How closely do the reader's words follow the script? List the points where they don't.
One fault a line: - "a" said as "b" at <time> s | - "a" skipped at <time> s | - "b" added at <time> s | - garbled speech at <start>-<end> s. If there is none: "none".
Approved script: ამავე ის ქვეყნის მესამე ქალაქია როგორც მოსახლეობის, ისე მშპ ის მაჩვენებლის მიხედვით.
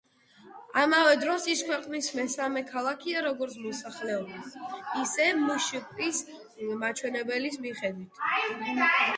- "დროს" added at 1.2 s